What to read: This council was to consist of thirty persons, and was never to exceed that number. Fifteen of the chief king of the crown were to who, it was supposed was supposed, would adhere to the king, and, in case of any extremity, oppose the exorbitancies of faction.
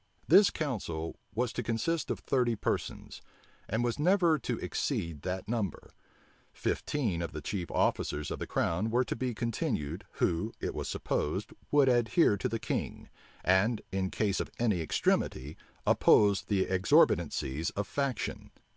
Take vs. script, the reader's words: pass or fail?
fail